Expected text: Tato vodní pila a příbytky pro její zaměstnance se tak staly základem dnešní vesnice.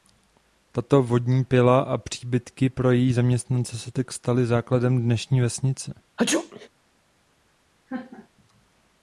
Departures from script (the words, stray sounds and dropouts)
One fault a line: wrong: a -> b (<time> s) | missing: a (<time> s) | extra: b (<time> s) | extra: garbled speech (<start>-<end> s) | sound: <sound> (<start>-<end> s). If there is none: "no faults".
sound: sneeze (6.2-6.7 s)
sound: laugh (7.9-8.3 s)